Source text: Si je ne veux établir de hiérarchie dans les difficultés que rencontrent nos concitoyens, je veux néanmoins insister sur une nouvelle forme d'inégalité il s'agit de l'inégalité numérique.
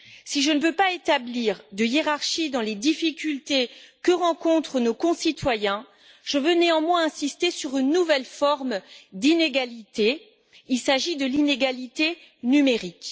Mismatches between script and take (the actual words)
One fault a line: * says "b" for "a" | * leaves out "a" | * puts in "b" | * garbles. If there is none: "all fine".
* puts in "pas"